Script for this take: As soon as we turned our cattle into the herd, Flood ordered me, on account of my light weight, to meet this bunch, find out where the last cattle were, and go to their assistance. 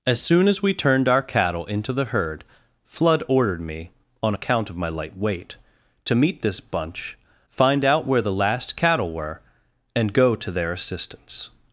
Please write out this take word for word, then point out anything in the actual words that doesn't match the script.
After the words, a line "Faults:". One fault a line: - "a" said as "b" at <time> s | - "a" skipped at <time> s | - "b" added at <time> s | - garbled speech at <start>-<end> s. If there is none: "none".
As soon as we turned our cattle into the herd, Flood ordered me, on account of my light weight, to meet this bunch, find out where the last cattle were, and go to their assistance.
Faults:
none